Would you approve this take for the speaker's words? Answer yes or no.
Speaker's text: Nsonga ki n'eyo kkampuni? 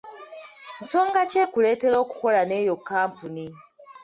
no